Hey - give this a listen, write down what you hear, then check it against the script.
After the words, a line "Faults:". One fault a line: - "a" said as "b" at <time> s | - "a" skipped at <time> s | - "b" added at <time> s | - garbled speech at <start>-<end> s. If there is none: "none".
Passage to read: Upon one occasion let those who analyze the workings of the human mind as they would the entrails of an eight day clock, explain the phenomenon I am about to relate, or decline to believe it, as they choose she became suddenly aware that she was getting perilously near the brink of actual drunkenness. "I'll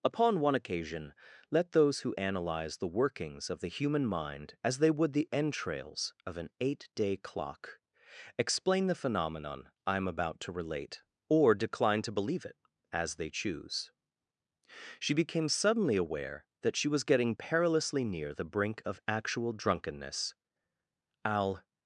Upon one occasion let those who analyze the workings of the human mind as they would the entrails of an eight day clock, explain the phenomenon I am about to relate, or decline to believe it, as they choose she became suddenly aware that she was getting perilously near the brink of actual drunkenness. "I'll
Faults:
none